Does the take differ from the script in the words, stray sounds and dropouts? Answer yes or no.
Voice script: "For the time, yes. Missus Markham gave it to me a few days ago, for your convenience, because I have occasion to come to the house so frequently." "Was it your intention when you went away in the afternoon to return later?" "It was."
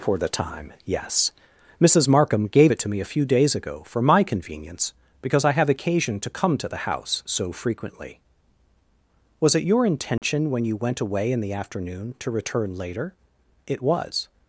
yes